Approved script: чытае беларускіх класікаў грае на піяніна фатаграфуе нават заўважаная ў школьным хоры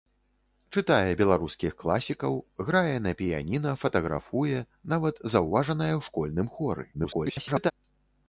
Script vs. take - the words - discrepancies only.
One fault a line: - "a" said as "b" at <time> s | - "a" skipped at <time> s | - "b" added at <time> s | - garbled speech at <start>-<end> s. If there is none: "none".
- garbled speech at 6.9-7.7 s